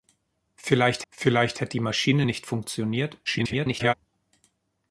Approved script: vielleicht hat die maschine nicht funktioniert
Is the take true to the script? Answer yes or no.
no